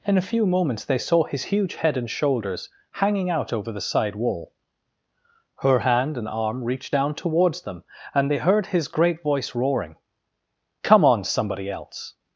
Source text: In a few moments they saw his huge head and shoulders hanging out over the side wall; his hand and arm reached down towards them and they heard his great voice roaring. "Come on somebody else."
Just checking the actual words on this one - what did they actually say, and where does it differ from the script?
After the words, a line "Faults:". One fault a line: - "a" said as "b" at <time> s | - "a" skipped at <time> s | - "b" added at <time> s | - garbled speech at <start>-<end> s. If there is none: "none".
In a few moments they saw his huge head and shoulders hanging out over the side wall; her hand and arm reached down towards them and they heard his great voice roaring. "Come on somebody else."
Faults:
- "his" said as "her" at 5.6 s